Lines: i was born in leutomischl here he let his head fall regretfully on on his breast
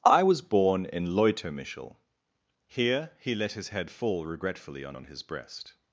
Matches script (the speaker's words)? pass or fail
pass